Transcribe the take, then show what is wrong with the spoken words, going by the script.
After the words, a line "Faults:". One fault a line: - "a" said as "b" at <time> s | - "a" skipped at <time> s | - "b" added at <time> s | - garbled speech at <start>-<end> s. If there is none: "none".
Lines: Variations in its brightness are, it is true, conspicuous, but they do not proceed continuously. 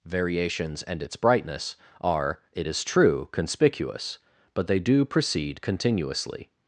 Variations and its brightness are, it is true, conspicuous, but they do proceed continuously.
Faults:
- "in" said as "and" at 0.8 s
- "not" skipped at 5.0 s